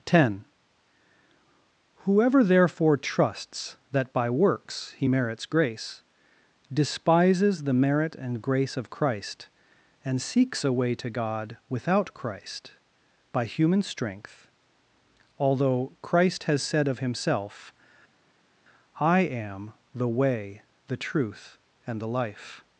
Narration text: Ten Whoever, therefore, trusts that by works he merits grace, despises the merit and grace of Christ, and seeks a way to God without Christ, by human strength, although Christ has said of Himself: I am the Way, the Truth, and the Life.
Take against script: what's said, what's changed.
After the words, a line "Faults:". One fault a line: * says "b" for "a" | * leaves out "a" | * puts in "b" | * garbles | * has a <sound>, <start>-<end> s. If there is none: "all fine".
Ten Whoever, therefore, trusts that by works he merits grace, despises the merit and grace of Christ, and seeks a way to God without Christ, by human strength, although Christ has said of Himself: I am the Way, the Truth, and the Life.
Faults:
all fine